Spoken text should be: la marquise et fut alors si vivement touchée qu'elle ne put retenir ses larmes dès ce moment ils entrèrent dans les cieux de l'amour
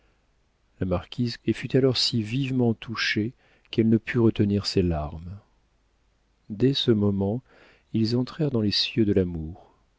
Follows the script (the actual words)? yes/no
yes